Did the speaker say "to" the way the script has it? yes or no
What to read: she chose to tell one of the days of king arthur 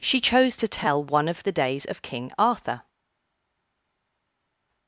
yes